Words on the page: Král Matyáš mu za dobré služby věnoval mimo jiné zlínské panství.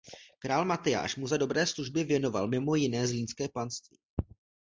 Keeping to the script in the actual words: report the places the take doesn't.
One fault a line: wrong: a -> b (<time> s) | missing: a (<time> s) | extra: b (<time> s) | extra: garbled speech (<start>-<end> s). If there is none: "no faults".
no faults